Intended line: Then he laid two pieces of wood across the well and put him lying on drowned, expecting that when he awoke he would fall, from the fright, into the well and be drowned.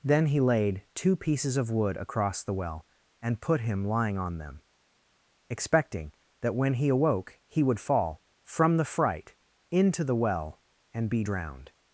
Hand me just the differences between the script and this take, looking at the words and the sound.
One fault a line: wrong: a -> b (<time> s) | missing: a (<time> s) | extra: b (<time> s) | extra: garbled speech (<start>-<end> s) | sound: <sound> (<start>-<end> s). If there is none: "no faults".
wrong: drowned -> them (4.4 s)